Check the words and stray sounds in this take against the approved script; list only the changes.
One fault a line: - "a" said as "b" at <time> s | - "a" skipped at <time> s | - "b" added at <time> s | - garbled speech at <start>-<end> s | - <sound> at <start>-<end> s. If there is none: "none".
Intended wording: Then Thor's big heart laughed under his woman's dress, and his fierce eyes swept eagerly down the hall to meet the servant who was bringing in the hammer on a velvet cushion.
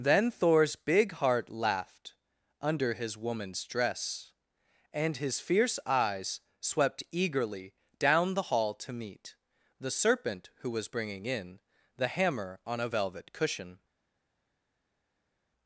- "servant" said as "serpent" at 9.9 s